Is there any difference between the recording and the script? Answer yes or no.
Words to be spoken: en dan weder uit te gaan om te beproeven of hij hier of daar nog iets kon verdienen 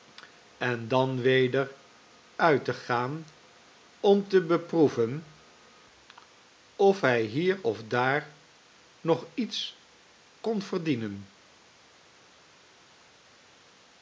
no